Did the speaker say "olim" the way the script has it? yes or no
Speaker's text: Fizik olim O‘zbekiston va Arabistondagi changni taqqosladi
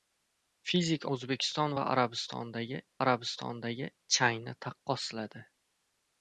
no